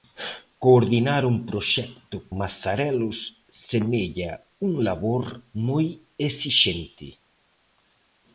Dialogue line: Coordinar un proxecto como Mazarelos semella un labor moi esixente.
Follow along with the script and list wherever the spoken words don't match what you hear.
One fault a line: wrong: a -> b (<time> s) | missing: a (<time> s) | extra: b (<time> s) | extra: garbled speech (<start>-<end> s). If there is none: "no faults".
missing: como (2.2 s)